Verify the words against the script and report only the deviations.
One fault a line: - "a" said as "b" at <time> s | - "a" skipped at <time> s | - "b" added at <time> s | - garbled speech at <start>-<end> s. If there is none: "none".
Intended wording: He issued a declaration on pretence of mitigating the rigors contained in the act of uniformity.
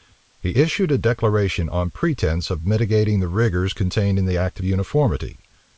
none